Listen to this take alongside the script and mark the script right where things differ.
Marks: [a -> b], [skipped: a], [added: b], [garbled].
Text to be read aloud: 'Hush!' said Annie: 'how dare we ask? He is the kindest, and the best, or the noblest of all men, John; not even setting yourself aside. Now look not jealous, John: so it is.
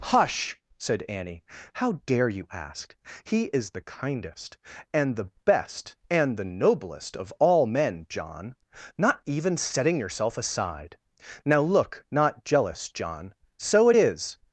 'Hush!' said Annie: 'how dare [we -> you] ask? He is the kindest, and the best, [or -> and] the noblest of all men, John; not even setting yourself aside. Now look not jealous, John: so it is.